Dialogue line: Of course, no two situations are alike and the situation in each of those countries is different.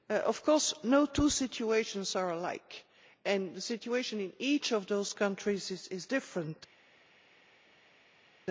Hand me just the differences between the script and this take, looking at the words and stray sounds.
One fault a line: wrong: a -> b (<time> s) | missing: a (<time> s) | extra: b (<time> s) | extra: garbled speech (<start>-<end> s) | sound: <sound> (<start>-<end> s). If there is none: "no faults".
no faults